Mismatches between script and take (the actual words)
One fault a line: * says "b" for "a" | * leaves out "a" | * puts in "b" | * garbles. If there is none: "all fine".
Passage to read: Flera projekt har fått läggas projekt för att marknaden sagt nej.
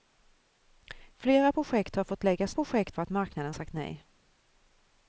all fine